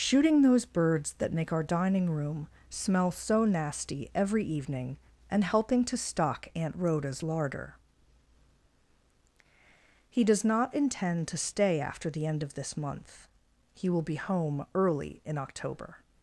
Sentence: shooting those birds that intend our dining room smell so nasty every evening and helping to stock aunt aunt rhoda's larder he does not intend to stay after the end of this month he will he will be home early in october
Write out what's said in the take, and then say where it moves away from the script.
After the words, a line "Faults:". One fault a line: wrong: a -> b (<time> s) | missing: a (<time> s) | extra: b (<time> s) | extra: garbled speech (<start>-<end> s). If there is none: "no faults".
shooting those birds that make our dining room smell so nasty every evening and helping to stock aunt rhoda's larder he does not intend to stay after the end of this month he will be home early in october
Faults:
wrong: intend -> make (1.3 s)
missing: aunt (6.8 s)
missing: he will (14.0 s)